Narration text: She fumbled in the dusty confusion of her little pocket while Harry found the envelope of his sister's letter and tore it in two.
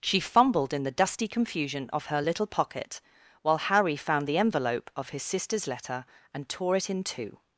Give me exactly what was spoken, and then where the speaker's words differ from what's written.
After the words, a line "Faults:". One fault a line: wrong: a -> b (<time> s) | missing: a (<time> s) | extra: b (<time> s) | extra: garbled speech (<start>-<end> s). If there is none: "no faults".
She fumbled in the dusty confusion of her little pocket while Harry found the envelope of his sister's letter and tore it in two.
Faults:
no faults